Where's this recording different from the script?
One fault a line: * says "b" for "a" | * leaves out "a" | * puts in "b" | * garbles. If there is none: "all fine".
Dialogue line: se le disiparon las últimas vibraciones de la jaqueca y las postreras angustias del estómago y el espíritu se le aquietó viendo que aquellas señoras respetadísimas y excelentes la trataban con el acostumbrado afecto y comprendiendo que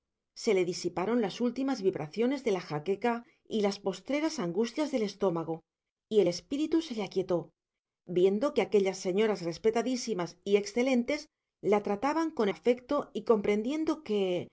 * leaves out "el acostumbrado"